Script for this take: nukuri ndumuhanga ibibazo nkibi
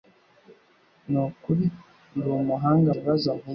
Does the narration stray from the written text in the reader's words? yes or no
no